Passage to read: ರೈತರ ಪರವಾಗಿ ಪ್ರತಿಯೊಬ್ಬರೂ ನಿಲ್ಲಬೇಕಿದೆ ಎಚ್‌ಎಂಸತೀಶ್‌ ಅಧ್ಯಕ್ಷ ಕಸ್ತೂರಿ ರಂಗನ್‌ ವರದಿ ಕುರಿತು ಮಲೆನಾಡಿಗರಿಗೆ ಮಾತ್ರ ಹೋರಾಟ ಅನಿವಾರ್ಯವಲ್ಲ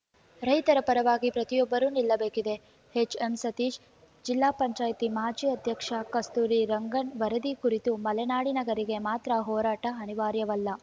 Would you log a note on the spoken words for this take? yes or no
yes